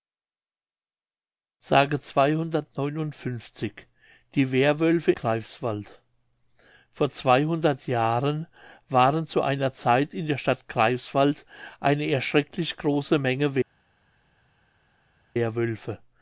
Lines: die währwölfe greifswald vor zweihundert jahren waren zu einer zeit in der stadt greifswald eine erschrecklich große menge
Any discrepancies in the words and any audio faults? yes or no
no